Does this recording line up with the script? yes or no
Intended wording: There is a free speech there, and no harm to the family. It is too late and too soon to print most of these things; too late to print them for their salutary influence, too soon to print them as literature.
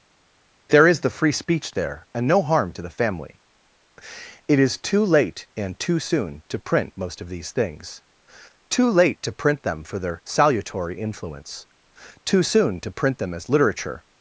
no